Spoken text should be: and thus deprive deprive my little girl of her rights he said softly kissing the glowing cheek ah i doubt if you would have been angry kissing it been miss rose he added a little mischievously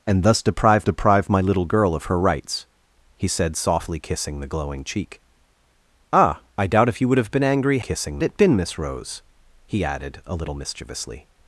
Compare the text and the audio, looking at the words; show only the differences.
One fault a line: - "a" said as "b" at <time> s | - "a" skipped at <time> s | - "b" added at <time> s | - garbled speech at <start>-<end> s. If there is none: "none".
none